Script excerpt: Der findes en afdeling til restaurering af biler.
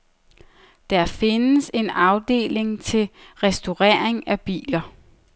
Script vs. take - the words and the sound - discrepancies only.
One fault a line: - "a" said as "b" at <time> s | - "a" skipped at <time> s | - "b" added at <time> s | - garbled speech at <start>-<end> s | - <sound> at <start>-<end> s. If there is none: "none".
none